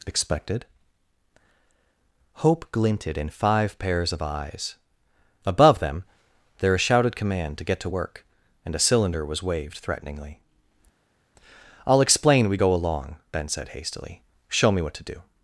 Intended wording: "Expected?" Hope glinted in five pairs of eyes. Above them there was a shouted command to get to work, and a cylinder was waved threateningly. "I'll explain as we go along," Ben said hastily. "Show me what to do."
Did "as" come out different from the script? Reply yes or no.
yes